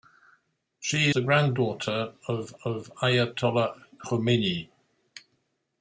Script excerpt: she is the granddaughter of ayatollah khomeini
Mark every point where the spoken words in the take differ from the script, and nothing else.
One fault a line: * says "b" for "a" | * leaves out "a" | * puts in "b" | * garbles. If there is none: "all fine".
* leaves out "is"
* puts in "of"